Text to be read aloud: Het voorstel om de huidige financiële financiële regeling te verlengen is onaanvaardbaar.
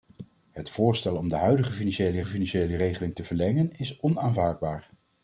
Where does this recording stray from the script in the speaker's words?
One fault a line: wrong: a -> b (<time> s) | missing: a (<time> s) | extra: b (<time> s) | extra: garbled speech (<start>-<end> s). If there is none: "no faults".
no faults